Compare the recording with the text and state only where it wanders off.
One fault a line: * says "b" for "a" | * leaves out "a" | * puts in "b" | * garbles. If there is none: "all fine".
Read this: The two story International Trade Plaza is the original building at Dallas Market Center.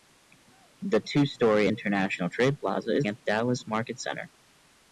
* leaves out "the original building"